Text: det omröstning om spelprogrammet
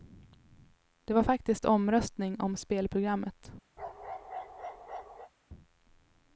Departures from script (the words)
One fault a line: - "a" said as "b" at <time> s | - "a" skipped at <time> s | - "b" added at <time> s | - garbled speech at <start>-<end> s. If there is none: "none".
- "var faktiskt" added at 1.1 s